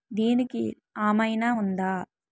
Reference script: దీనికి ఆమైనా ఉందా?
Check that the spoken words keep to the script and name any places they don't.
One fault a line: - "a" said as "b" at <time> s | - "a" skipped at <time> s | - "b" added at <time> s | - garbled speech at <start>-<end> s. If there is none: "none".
none